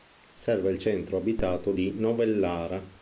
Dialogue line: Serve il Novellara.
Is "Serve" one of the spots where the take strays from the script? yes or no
no